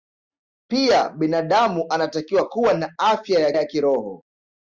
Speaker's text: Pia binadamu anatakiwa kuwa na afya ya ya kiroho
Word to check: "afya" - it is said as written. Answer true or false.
true